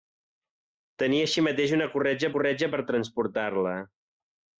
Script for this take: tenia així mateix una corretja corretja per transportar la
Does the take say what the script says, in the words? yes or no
yes